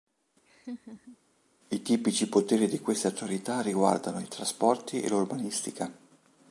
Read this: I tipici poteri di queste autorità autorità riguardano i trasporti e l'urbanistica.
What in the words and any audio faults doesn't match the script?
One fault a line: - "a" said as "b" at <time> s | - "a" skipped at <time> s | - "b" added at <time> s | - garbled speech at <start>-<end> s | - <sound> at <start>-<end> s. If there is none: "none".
- laugh at 0.5-1.2 s
- "autorità" skipped at 3.6 s